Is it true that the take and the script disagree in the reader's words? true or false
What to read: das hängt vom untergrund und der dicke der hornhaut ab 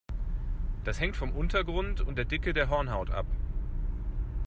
false